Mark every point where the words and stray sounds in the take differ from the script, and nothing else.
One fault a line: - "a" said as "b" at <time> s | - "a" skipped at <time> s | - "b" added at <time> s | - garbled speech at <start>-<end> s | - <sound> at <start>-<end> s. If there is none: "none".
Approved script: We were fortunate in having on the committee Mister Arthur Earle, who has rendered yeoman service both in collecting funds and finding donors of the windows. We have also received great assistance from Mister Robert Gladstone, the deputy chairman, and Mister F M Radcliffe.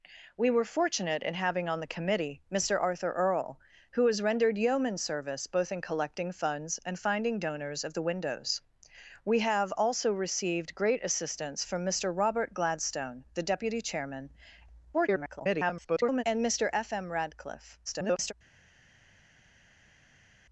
- garbled speech at 14.9-16.2 s
- garbled speech at 17.9-18.3 s